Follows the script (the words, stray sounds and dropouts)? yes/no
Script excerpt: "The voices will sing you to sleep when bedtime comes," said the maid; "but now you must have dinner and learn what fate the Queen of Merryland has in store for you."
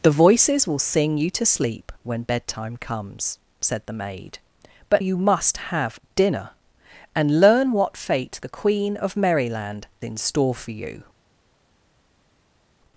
no